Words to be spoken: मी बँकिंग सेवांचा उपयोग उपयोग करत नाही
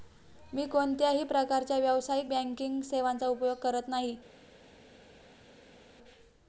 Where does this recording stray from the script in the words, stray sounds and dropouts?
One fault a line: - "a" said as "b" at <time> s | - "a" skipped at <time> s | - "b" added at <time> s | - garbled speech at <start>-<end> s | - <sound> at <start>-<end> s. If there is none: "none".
- "कोणत्याही प्रकारच्या व्यावसायिक" added at 0.7 s
- "उपयोग" skipped at 3.6 s